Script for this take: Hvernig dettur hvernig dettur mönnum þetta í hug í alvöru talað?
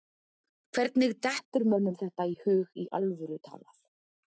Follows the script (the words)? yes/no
no